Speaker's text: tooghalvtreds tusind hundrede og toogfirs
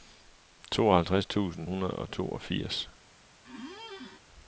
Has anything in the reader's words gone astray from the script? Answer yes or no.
no